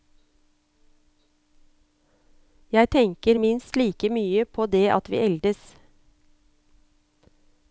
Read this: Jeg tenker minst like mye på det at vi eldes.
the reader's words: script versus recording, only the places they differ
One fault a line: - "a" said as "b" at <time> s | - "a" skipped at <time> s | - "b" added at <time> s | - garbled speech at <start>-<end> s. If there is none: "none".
none